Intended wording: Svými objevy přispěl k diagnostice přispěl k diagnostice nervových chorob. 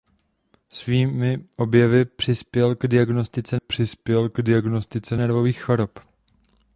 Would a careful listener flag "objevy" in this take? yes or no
no